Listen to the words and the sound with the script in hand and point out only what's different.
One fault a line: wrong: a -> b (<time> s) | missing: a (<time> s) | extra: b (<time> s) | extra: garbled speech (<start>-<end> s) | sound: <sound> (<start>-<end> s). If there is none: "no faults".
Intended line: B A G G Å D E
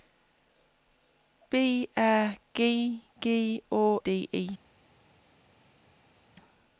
no faults